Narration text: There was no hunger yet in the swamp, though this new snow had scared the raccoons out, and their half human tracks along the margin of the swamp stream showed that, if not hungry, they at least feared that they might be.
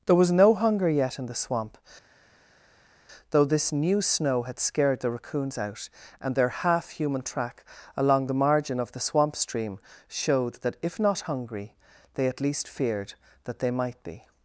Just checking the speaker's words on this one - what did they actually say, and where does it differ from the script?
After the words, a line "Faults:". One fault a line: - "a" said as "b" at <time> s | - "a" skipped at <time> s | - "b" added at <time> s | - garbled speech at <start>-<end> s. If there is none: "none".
There was no hunger yet in the swamp, though this new snow had scared the raccoons out, and their half human track along the margin of the swamp stream showed that, if not hungry, they at least feared that they might be.
Faults:
- "tracks" said as "track" at 7.2 s